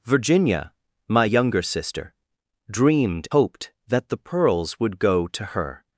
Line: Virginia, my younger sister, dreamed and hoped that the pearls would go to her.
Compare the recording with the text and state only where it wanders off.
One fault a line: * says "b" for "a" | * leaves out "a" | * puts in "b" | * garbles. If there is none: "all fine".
* leaves out "and"